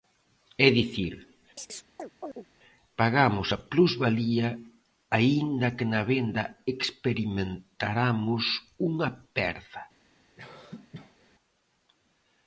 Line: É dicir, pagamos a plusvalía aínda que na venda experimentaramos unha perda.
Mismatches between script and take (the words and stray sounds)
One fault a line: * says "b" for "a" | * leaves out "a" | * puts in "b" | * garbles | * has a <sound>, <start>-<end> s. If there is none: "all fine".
* has a chirp, 1.6-2.5 s
* has a cough, 10.4-11.3 s